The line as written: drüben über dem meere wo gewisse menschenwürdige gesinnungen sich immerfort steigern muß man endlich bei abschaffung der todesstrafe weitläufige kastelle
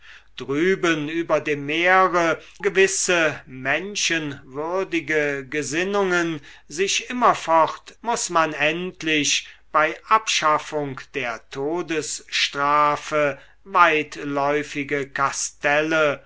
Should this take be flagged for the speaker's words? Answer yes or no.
yes